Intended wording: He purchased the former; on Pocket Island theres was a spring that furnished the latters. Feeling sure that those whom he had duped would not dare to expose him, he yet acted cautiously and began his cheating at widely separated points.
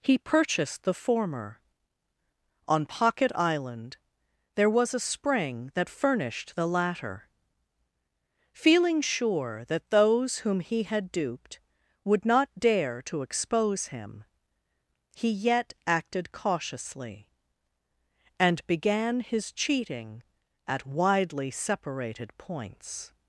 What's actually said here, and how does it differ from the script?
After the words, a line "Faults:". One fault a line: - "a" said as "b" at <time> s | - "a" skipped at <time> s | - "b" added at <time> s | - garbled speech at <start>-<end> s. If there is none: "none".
He purchased the former; on Pocket Island there was a spring that furnished the latter. Feeling sure that those whom he had duped would not dare to expose him, he yet acted cautiously and began his cheating at widely separated points.
Faults:
- "theres" said as "there" at 4.5 s
- "latters" said as "latter" at 6.7 s